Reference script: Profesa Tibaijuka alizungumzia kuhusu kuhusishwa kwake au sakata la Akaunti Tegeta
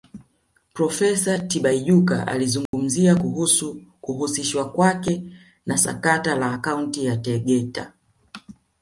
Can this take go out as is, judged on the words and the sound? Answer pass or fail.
fail